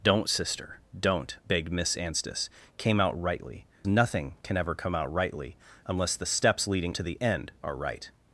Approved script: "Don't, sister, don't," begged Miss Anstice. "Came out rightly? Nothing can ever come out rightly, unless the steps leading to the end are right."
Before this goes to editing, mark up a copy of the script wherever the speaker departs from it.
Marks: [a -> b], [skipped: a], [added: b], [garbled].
"Don't, sister, don't," begged Miss Anstice. "Came out rightly? Nothing can ever come out rightly, unless the steps leading to the end are right."